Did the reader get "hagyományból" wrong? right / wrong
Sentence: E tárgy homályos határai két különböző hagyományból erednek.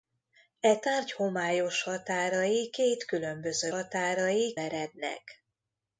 wrong